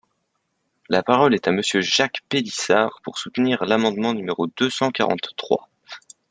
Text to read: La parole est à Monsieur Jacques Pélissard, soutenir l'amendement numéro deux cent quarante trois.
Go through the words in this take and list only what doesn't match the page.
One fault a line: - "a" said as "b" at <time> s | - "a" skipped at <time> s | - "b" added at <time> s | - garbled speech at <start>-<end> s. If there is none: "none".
- "pour" added at 3.0 s